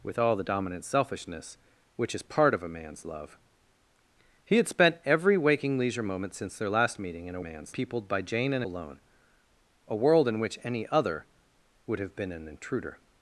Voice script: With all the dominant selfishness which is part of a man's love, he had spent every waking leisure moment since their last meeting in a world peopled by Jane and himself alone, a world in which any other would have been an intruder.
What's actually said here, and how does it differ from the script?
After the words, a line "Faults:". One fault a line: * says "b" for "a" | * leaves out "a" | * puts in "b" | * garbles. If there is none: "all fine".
With all the dominant selfishness which is part of a man's love, he had spent every waking leisure moment since their last meeting in a man's peopled by Jane and alone, a world in which any other would have been an intruder.
Faults:
* says "man's" for "world"
* leaves out "himself"